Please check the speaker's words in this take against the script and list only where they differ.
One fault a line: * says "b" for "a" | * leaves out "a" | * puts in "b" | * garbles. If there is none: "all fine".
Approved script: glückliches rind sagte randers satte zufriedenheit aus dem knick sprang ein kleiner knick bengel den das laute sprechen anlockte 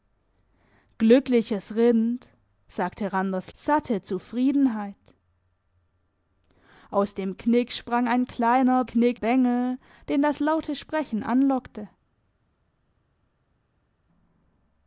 all fine